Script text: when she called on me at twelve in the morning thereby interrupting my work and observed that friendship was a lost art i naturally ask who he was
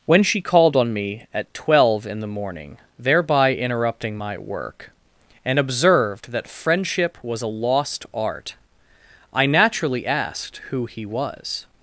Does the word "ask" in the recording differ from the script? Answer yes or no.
yes